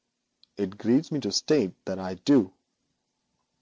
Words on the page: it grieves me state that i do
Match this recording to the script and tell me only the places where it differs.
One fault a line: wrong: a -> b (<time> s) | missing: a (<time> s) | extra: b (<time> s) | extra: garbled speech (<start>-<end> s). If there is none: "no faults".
extra: to (1.2 s)